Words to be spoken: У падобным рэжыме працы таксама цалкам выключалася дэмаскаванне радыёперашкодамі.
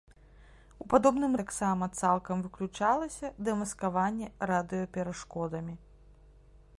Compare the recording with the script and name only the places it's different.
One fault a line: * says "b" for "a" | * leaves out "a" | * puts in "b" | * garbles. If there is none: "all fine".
* leaves out "рэжыме працы"